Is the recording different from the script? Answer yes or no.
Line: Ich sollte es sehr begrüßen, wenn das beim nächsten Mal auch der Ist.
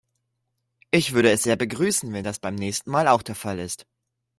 yes